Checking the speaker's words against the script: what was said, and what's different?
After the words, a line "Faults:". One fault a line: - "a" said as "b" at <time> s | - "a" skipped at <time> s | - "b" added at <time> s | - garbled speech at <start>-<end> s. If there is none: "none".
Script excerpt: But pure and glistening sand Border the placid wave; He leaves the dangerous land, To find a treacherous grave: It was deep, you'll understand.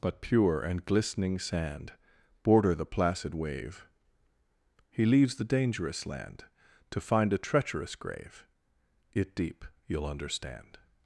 But pure and glistening sand Border the placid wave; He leaves the dangerous land, To find a treacherous grave: It deep, you'll understand.
Faults:
- "was" skipped at 9.3 s